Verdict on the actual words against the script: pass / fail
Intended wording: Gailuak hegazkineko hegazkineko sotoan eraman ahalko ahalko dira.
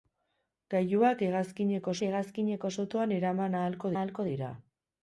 pass